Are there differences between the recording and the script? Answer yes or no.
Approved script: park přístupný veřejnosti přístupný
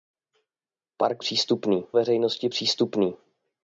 no